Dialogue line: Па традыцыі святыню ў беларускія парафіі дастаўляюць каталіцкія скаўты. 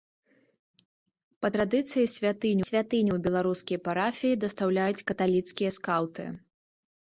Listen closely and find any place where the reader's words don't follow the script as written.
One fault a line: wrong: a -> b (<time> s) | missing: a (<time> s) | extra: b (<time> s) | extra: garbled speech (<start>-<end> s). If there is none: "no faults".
extra: святыню (2.7 s)